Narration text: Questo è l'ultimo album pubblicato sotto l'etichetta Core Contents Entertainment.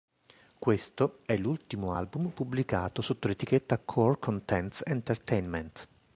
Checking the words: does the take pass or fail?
pass